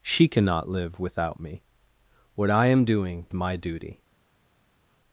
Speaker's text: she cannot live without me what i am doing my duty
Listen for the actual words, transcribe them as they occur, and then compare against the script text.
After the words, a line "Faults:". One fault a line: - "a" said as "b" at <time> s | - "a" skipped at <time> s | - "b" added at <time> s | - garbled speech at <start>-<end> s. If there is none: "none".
she cannot live without me what i am doing my duty
Faults:
none